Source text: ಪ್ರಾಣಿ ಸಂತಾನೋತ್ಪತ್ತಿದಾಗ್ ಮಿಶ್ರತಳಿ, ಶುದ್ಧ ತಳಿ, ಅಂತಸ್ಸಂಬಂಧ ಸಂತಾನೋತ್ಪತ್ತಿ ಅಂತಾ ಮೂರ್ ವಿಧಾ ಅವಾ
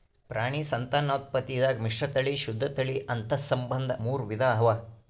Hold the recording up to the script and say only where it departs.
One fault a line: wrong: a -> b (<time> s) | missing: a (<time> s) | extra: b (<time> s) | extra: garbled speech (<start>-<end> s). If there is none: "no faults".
missing: ಸಂತಾನೋತ್ಪತ್ತಿ ಅಂತಾ (4.0 s)